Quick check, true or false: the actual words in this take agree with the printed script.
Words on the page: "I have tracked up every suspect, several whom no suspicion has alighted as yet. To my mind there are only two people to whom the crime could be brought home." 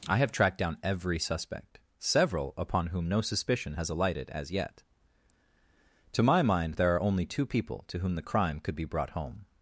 false